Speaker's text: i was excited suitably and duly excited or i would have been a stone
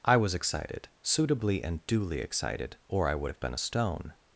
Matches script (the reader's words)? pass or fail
pass